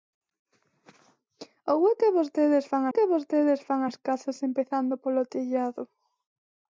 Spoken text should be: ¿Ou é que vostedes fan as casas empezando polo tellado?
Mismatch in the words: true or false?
true